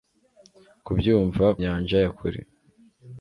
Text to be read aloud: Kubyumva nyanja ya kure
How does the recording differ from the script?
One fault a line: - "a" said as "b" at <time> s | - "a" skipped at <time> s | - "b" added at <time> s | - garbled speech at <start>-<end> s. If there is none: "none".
none